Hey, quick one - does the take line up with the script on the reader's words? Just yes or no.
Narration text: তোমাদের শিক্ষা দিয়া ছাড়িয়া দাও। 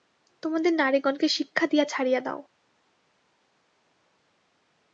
no